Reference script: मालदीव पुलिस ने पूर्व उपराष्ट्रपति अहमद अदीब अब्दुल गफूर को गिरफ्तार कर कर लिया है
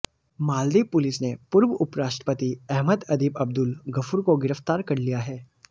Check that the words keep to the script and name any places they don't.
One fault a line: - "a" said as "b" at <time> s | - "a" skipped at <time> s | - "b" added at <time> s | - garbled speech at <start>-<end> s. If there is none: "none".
- "कर" skipped at 5.0 s